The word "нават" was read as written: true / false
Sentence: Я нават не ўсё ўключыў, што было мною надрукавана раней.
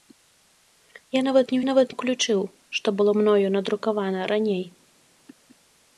true